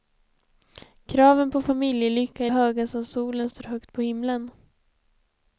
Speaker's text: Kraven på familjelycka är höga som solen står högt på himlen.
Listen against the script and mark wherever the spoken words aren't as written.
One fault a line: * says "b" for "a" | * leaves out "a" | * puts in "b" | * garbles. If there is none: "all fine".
all fine